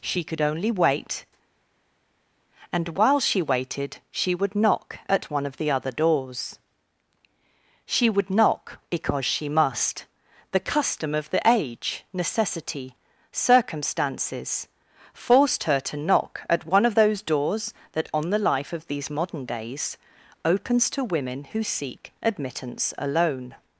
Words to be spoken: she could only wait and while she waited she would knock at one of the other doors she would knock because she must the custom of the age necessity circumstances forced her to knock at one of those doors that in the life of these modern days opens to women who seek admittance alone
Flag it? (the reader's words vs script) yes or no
yes